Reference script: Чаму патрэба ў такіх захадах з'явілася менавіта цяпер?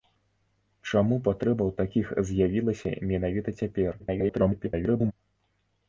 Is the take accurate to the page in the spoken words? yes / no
no